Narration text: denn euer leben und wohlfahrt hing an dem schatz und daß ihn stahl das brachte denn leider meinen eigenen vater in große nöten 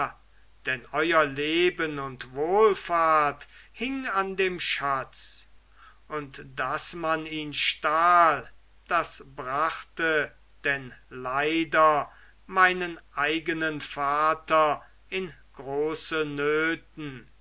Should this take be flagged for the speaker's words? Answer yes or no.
yes